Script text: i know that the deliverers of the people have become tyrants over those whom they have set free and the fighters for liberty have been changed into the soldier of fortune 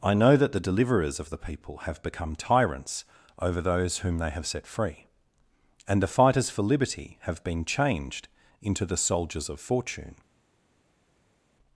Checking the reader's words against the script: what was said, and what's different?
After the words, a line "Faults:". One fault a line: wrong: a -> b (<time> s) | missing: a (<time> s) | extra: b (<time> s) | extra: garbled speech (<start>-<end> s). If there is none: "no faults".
i know that the deliverers of the people have become tyrants over those whom they have set free and the fighters for liberty have been changed into the soldiers of fortune
Faults:
wrong: soldier -> soldiers (9.0 s)